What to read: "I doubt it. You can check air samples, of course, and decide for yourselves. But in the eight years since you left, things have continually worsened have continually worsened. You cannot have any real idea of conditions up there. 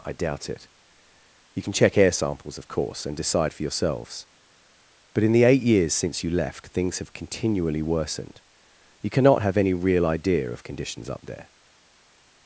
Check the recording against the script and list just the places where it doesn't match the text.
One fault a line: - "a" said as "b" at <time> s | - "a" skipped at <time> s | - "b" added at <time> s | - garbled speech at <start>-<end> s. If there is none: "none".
- "have continually worsened" skipped at 8.4 s